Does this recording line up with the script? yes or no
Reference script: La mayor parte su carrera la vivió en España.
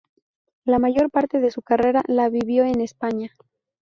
no